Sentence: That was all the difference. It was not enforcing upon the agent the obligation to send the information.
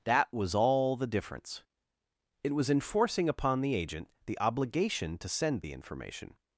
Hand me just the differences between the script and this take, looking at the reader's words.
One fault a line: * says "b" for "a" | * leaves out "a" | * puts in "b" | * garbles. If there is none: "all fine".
* leaves out "not"